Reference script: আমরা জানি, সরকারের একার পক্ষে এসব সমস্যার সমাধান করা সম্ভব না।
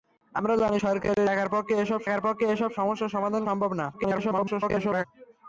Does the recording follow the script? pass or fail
fail